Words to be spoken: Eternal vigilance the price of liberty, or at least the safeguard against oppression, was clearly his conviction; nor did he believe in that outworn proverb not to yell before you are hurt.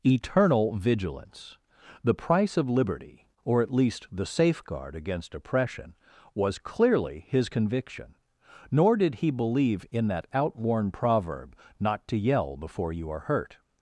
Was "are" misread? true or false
false